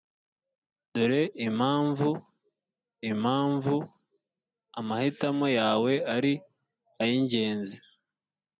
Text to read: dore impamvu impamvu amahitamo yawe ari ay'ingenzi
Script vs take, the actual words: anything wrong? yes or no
no